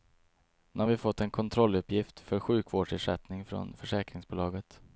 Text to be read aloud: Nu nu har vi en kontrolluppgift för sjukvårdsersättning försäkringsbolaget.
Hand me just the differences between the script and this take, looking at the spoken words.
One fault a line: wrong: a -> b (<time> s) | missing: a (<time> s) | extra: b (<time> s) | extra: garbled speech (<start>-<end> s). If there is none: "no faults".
missing: nu (0.8 s)
extra: fått (1.0 s)
extra: från (3.5 s)